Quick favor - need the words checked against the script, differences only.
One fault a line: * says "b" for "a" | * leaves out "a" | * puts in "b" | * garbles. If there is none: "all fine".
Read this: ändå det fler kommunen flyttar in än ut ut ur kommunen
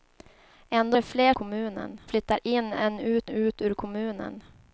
all fine